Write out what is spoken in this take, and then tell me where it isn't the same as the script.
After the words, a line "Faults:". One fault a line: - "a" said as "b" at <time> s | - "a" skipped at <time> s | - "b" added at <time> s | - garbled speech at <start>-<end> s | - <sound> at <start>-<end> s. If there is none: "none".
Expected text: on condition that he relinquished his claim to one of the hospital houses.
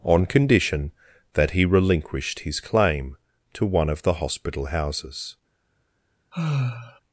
on condition that he relinquished his claim to one of the hospital houses.
Faults:
- sigh at 6.3-7.0 s